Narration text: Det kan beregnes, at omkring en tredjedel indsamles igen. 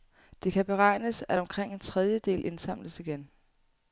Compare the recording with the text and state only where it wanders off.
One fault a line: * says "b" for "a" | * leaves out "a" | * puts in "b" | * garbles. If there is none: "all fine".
all fine